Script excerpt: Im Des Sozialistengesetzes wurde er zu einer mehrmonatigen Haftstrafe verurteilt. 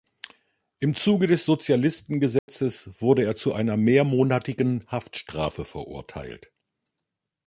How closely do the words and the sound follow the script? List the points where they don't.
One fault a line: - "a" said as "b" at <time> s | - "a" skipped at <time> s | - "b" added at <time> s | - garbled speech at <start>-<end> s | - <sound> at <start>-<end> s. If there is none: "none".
- "Zuge" added at 0.9 s
- dropout at 2.4-2.5 s